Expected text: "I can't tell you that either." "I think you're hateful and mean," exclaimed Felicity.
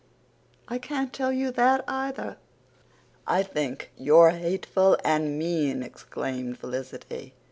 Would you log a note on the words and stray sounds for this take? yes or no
no